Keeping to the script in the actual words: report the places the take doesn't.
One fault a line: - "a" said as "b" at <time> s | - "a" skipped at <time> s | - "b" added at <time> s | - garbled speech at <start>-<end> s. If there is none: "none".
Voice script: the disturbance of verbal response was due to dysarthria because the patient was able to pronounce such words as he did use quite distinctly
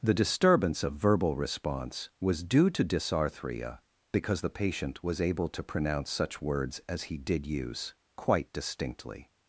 none